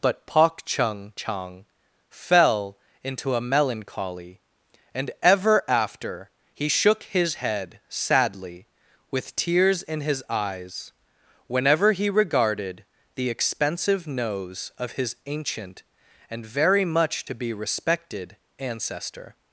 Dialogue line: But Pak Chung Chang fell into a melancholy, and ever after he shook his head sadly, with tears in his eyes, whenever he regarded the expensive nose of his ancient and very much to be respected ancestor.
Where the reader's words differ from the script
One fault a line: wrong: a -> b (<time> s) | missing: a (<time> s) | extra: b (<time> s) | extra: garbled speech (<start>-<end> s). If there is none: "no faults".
no faults